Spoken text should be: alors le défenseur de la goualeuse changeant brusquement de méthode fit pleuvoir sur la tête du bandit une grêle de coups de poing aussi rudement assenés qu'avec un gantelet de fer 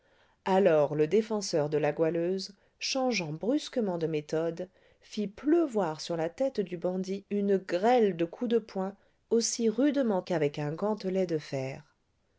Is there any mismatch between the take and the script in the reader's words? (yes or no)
yes